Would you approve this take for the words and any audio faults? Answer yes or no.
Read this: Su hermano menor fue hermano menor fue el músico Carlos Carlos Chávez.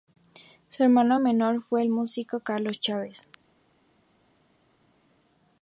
no